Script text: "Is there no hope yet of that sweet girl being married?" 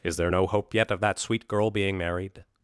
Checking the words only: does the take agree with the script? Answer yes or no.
yes